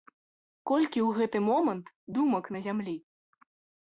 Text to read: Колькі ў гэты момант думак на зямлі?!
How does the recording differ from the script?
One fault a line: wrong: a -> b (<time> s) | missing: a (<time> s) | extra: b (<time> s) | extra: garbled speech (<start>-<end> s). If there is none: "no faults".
no faults